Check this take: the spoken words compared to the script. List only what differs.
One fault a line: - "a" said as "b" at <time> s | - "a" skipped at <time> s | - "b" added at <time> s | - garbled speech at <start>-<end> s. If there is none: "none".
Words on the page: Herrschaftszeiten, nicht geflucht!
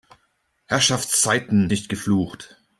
none